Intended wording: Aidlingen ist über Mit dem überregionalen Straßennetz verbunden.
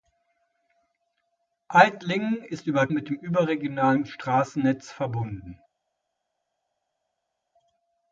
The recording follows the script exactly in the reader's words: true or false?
true